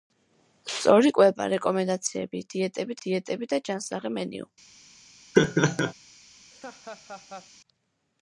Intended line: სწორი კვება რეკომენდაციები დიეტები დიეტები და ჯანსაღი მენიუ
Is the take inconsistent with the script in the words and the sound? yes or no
yes